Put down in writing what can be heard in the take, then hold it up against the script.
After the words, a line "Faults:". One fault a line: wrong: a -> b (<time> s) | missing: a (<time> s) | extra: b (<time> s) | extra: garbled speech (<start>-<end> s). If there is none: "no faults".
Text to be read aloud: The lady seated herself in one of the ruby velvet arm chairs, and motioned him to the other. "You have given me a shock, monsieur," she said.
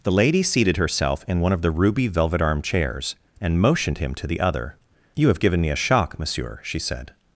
The lady seated herself in one of the ruby velvet arm chairs, and motioned him to the other. "You have given me a shock, monsieur," she said.
Faults:
no faults